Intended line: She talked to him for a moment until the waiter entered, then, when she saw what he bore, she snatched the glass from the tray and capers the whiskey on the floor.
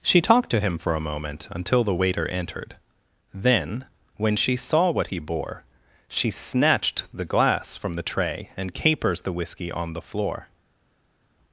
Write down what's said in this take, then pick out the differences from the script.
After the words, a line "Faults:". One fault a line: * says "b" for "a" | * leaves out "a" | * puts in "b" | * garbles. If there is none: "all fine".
She talked to him for a moment until the waiter entered, then, when she saw what he bore, she snatched the glass from the tray and capers the whiskey on the floor.
Faults:
all fine